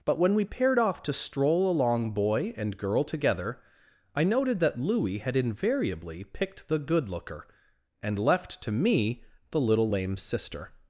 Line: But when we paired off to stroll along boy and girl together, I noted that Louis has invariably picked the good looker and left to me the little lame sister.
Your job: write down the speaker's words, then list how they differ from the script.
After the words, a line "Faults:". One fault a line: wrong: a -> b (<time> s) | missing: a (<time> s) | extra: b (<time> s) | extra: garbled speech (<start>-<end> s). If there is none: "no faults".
But when we paired off to stroll along boy and girl together, I noted that Louis had invariably picked the good looker and left to me the little lame sister.
Faults:
wrong: has -> had (5.2 s)